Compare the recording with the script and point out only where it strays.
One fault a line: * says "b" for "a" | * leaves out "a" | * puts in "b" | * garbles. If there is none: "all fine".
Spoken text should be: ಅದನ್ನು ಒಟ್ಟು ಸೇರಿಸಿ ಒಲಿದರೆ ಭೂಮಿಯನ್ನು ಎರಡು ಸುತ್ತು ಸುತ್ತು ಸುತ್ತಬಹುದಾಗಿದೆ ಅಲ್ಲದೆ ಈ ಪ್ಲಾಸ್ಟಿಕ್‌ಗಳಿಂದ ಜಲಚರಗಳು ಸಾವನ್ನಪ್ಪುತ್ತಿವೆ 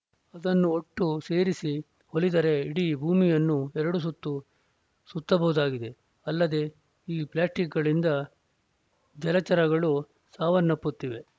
* puts in "ಇಡೀ"
* leaves out "ಸುತ್ತು"